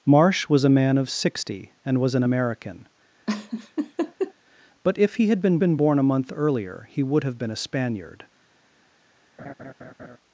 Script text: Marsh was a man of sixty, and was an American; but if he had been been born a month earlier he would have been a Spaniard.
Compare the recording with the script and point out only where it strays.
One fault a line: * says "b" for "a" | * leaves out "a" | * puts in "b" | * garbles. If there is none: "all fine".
all fine